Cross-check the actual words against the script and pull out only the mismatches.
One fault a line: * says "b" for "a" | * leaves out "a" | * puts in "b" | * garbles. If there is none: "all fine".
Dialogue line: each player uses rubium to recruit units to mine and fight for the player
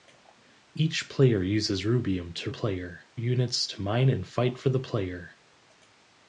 * says "player" for "recruit"